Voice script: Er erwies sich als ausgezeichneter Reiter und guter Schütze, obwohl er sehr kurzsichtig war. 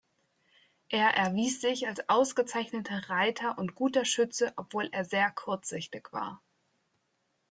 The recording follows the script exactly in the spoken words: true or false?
true